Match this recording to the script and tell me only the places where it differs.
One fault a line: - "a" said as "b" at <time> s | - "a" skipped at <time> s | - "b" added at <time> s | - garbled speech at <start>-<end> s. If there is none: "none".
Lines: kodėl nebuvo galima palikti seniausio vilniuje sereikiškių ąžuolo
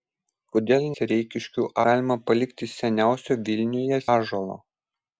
- "nebuvo" said as "sereikiškių" at 0.9 s
- "sereikiškių" skipped at 4.0 s